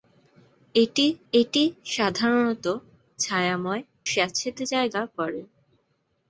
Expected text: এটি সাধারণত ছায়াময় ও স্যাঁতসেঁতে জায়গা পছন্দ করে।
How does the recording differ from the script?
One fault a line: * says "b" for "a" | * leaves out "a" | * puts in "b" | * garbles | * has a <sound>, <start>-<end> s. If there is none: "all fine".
* puts in "এটি"
* leaves out "ও"
* leaves out "পছন্দ"